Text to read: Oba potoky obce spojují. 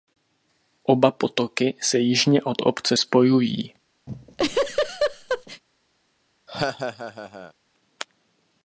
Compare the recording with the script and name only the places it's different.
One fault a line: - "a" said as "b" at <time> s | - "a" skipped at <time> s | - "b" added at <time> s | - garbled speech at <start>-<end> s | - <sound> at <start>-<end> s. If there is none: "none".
- "se jižně od" added at 1.8 s
- laugh at 4.1-5.6 s
- laugh at 6.5-7.5 s